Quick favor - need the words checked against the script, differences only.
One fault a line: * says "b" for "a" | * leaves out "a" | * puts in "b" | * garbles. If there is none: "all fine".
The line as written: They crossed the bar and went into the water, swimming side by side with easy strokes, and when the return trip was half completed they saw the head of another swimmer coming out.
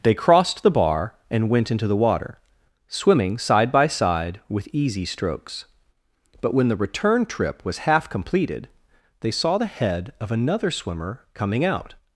* says "but" for "and"